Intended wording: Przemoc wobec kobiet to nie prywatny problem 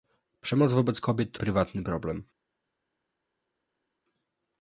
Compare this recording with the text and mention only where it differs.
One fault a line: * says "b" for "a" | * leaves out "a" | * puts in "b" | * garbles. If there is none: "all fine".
* leaves out "nie"